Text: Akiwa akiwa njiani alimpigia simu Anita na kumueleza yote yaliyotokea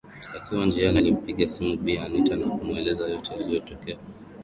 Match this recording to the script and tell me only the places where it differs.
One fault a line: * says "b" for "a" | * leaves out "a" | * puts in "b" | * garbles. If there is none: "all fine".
* leaves out "akiwa"
* puts in "Bi"